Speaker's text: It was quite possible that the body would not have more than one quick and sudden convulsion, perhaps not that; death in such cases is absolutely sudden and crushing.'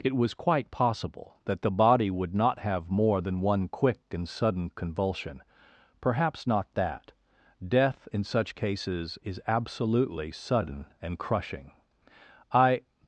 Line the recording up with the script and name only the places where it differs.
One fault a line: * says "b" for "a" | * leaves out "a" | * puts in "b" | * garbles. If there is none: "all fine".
* puts in "I"